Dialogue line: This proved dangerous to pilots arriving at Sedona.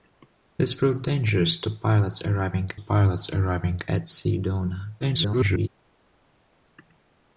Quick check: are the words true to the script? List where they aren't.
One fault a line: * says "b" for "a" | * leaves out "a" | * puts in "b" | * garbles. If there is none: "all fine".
* puts in "pilots arriving"
* garbles